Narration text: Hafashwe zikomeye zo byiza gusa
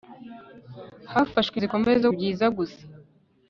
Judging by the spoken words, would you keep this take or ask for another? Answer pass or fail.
pass